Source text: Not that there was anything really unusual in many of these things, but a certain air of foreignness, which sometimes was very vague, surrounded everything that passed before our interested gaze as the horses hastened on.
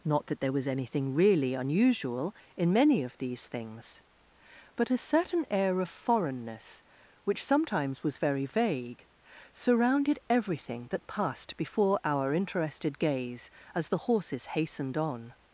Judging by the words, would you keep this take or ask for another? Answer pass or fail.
pass